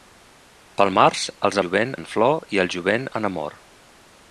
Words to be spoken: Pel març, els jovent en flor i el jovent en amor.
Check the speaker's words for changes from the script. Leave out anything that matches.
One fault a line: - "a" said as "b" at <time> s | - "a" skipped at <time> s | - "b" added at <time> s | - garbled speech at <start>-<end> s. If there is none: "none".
none